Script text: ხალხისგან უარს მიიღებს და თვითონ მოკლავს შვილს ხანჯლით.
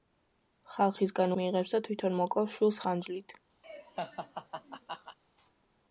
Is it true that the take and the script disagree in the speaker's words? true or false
true